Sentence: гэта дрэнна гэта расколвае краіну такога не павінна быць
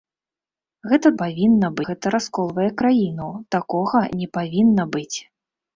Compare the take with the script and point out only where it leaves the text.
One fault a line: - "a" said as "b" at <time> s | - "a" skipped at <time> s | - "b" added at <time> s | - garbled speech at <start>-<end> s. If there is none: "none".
- "дрэнна" said as "павінна" at 1.2 s